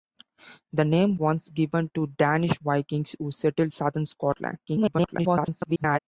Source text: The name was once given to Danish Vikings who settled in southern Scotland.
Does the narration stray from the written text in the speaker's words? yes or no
yes